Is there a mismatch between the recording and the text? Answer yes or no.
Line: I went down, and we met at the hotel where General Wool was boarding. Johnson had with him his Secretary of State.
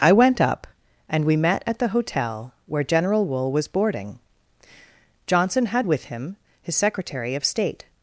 yes